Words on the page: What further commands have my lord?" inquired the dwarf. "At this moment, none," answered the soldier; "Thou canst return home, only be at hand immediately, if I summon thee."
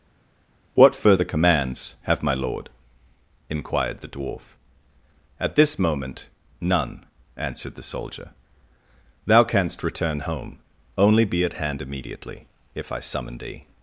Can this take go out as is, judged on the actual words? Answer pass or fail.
pass